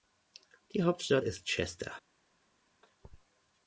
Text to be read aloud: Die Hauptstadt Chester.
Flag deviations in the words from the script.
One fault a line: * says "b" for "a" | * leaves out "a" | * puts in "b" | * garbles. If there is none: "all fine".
* puts in "ist"